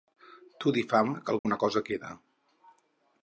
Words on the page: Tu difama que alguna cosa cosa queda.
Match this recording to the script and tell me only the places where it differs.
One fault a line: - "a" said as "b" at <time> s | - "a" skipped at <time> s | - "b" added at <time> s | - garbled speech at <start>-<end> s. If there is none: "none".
- "cosa" skipped at 1.8 s